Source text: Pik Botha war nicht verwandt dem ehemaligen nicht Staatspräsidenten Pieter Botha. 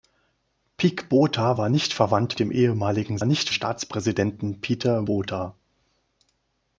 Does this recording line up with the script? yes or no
yes